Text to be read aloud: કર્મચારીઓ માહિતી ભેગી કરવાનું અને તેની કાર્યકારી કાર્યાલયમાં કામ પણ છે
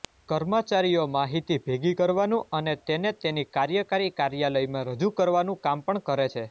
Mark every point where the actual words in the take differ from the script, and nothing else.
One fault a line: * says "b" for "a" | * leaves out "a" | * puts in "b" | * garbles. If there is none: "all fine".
* puts in "તેને"
* puts in "રજૂ કરવાનું"
* puts in "કરે"